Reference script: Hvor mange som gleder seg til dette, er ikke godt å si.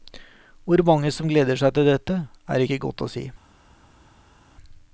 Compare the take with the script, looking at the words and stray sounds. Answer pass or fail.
pass